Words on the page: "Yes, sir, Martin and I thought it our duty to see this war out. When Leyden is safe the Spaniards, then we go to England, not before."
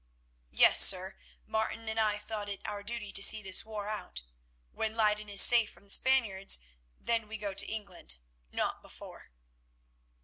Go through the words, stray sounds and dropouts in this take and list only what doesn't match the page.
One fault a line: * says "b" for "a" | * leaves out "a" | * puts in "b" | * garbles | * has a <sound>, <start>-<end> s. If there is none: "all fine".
* puts in "from"